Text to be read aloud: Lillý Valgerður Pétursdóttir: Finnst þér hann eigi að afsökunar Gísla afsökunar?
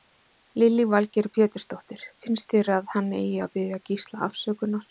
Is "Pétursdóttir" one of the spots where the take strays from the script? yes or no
no